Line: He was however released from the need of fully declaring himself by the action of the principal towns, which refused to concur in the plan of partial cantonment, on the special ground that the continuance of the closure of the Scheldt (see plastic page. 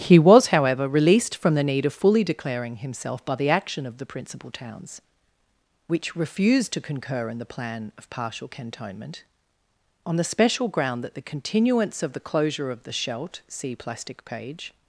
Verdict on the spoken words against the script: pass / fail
pass